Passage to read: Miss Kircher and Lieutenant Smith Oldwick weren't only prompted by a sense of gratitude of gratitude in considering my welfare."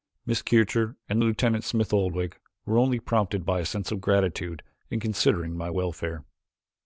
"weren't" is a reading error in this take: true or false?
true